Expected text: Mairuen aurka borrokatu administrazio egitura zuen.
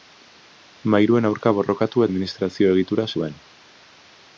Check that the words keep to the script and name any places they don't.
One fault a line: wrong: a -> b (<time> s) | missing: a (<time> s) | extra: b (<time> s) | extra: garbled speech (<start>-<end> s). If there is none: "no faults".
no faults